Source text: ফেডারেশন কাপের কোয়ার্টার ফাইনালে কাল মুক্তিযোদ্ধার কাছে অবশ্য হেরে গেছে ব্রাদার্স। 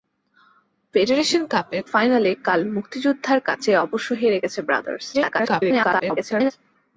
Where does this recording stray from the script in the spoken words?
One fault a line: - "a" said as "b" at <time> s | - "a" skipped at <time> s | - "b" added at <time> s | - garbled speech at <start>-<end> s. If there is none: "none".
- "কোয়ার্টার" skipped at 1.8 s
- garbled speech at 5.1-6.5 s